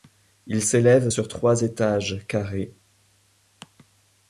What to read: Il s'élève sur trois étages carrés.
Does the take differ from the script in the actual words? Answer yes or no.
no